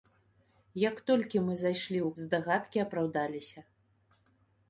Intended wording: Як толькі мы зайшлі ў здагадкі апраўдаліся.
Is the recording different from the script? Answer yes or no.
no